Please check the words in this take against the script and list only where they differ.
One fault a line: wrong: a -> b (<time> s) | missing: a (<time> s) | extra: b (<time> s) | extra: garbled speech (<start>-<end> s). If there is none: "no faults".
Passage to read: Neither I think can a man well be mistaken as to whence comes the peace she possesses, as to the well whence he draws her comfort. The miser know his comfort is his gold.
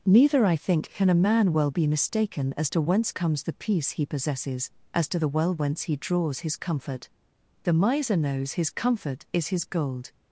wrong: she -> he (3.9 s)
wrong: her -> his (6.4 s)
wrong: know -> knows (8.2 s)